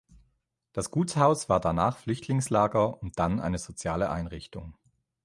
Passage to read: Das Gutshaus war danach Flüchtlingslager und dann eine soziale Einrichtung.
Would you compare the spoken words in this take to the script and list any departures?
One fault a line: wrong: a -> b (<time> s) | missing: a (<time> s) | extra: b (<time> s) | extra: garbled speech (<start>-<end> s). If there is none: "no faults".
no faults